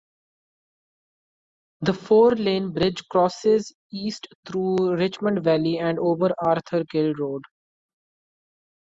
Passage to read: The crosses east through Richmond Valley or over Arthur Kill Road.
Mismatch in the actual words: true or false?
true